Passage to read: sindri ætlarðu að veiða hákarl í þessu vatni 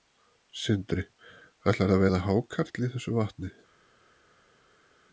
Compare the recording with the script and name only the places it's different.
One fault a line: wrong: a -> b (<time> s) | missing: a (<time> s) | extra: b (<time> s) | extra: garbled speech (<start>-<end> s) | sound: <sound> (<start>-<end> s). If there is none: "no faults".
no faults